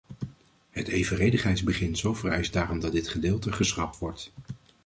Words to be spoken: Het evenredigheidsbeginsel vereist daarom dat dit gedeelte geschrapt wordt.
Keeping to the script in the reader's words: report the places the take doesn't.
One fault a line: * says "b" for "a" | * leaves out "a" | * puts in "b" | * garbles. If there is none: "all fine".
all fine